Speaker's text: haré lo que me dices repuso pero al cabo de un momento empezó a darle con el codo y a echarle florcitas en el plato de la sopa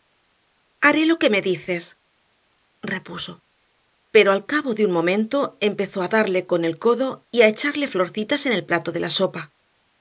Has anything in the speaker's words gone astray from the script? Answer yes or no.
no